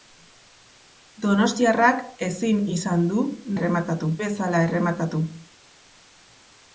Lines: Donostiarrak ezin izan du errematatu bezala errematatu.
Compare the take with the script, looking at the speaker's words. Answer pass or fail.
pass